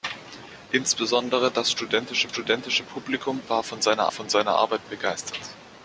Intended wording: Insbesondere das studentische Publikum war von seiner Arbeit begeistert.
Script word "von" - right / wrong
right